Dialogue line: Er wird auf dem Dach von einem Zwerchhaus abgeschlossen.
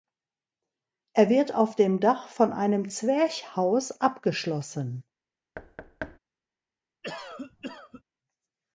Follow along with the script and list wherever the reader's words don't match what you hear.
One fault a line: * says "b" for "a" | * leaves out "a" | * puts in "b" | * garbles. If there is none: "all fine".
all fine